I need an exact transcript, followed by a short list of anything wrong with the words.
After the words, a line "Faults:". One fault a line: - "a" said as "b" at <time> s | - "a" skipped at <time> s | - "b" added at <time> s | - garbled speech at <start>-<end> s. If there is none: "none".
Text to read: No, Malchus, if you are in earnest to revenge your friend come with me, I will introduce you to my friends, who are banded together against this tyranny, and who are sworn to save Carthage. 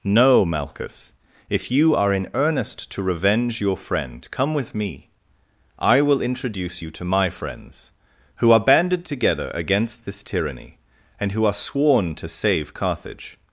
No, Malchus, if you are in earnest to revenge your friend come with me, I will introduce you to my friends, who are banded together against this tyranny, and who are sworn to save Carthage.
Faults:
none